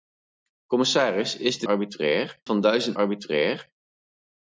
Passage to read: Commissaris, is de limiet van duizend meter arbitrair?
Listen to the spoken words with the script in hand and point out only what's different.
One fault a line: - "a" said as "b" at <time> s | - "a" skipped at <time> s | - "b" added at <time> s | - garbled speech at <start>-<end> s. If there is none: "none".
- "limiet" said as "arbitrair" at 1.6 s
- "meter" skipped at 3.0 s